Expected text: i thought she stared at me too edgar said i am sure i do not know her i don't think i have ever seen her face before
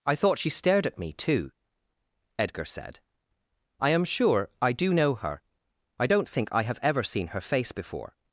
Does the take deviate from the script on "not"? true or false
true